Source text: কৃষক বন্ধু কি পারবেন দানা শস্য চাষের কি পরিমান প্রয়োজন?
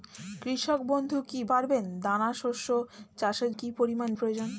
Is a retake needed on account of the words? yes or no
no